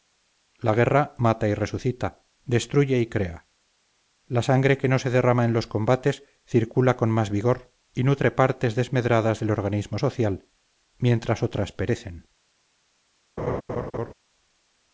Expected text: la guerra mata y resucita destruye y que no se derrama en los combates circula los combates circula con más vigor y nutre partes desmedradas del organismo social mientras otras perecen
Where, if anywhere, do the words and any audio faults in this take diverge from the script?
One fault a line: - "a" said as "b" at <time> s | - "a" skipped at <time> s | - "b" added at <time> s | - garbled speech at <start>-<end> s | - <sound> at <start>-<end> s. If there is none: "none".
- "crea la sangre" added at 3.0 s
- "los combates circula" skipped at 7.0 s
- laugh at 13.4-14.1 s